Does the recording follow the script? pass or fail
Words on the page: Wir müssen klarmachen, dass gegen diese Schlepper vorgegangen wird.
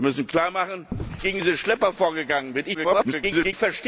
fail